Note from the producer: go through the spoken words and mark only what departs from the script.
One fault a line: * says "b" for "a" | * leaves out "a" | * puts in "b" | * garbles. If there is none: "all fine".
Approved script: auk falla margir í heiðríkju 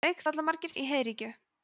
all fine